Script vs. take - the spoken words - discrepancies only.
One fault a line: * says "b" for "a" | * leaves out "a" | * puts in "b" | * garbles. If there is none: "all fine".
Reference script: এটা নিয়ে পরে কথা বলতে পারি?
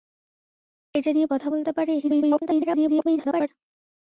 * leaves out "পরে"
* garbles